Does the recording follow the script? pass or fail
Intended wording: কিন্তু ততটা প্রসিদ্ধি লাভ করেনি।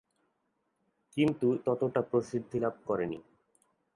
pass